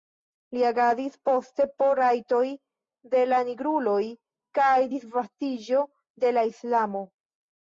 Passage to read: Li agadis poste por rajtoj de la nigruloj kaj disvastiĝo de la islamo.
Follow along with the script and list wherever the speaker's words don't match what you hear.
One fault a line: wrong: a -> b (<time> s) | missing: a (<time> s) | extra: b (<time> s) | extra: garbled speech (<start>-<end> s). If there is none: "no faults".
no faults